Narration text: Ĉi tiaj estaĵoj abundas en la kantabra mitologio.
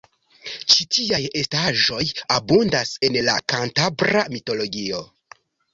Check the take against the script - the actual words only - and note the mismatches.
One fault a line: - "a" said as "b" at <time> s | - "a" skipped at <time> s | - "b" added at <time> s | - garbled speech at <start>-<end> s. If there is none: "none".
none